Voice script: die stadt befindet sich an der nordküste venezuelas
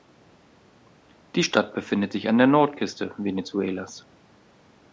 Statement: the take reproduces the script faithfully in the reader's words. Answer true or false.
true